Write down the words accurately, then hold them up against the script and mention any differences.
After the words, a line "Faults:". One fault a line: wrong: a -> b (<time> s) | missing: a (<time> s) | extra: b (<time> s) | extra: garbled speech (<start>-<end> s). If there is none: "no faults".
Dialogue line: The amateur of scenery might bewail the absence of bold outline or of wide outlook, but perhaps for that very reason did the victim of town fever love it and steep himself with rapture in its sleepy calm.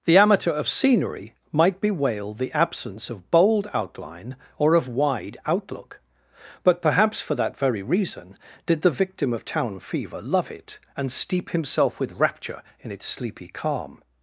The amateur of scenery might bewail the absence of bold outline or of wide outlook, but perhaps for that very reason did the victim of town fever love it and steep himself with rapture in its sleepy calm.
Faults:
no faults